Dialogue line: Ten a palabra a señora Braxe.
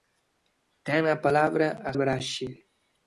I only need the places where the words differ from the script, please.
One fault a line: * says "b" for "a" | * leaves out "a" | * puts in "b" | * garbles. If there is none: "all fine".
* leaves out "señora"